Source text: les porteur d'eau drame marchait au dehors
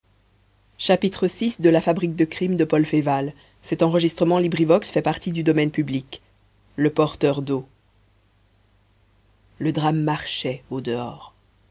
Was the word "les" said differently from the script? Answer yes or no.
yes